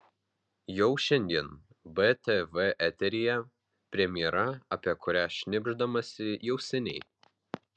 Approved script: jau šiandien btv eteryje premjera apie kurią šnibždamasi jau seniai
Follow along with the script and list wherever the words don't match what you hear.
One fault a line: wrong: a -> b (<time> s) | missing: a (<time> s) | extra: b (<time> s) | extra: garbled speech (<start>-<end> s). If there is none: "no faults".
no faults